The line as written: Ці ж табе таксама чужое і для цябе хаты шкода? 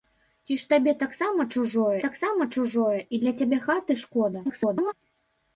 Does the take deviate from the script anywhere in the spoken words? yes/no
yes